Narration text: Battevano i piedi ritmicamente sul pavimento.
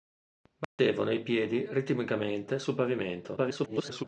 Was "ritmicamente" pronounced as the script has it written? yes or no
yes